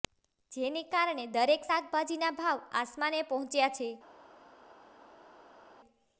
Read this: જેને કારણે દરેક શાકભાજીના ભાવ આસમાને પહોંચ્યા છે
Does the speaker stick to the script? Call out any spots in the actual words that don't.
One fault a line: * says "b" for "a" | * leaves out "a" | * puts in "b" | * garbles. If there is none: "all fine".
all fine